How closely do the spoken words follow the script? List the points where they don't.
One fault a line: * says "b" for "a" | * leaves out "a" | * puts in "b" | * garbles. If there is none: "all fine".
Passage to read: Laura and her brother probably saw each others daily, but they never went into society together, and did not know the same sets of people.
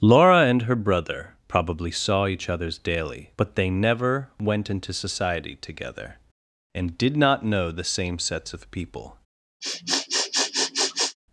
all fine